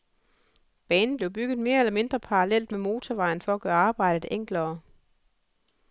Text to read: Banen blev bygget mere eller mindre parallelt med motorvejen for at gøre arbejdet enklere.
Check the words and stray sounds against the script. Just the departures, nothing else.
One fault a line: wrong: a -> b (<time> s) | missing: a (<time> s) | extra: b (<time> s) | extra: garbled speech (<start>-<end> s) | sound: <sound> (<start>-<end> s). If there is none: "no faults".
no faults